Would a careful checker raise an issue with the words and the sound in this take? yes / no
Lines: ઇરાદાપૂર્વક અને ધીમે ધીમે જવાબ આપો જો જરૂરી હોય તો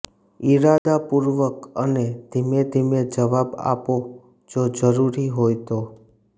yes